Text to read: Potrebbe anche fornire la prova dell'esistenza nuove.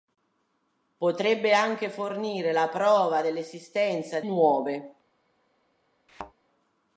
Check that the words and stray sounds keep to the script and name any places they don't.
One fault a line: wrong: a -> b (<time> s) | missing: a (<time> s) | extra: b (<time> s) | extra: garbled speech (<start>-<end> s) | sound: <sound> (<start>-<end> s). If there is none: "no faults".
sound: thud (6.1-6.3 s)